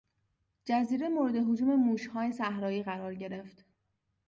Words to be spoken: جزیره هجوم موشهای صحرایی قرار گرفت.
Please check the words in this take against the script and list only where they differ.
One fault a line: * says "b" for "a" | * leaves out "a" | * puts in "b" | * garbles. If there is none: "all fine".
* puts in "مورد"